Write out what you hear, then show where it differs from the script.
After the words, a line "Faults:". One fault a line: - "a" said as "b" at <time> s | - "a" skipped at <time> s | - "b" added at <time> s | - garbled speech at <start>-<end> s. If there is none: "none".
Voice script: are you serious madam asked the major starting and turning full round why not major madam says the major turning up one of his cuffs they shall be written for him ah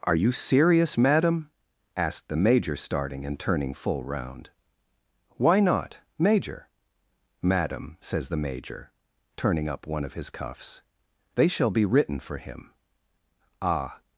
are you serious madam asked the major starting and turning full round why not major madam says the major turning up one of his cuffs they shall be written for him ah
Faults:
none